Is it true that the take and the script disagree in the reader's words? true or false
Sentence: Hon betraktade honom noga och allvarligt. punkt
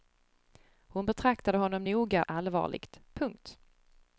true